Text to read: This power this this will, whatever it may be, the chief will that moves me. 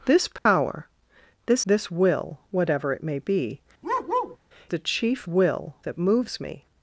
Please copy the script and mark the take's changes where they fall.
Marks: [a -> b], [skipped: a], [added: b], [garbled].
This power this this will, whatever it may be, the chief will that moves me.